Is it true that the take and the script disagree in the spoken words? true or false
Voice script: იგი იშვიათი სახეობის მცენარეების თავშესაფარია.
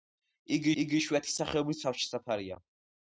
true